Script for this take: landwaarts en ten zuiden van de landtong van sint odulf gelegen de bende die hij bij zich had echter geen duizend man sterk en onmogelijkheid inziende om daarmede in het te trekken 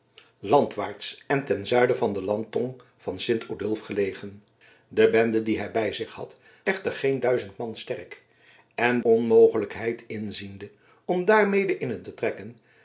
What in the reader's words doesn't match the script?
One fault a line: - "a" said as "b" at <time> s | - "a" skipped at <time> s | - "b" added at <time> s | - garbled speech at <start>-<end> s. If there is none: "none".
none